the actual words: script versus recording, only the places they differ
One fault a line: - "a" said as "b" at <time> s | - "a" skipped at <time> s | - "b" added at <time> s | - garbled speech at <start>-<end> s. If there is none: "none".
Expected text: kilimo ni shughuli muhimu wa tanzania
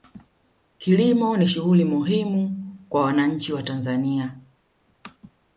- "kwa wananchi" added at 2.9 s